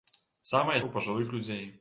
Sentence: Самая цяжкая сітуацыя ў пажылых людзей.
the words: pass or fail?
fail